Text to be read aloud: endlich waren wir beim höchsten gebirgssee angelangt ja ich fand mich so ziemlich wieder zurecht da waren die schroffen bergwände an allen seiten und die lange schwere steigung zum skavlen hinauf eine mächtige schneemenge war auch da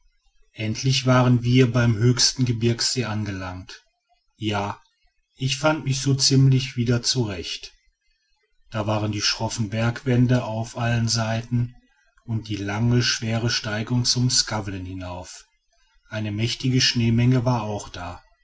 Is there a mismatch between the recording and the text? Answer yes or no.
yes